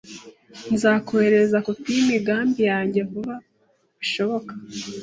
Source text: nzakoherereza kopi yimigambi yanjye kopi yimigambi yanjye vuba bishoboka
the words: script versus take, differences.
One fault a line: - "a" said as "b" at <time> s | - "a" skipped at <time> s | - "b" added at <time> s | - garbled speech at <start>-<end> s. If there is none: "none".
- "kopi yimigambi yanjye" skipped at 3.0 s